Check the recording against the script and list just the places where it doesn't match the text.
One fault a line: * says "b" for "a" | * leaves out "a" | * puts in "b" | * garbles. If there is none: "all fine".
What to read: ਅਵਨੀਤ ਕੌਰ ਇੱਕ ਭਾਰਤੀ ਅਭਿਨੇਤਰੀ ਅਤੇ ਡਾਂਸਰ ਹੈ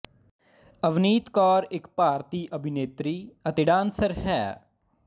all fine